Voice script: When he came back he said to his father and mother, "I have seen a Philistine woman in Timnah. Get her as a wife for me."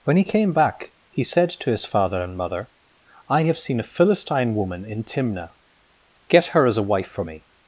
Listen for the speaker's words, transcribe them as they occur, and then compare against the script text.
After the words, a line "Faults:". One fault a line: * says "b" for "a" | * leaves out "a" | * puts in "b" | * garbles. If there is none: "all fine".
When he came back he said to his father and mother, "I have seen a Philistine woman in Timnah. Get her as a wife for me."
Faults:
all fine